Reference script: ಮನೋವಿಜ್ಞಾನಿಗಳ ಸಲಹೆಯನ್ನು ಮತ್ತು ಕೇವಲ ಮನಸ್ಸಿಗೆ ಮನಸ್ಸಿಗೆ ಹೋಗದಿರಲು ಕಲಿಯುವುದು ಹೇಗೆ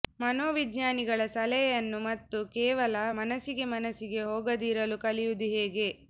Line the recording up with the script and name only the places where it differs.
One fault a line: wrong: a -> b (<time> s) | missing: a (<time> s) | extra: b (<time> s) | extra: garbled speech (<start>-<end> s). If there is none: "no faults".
no faults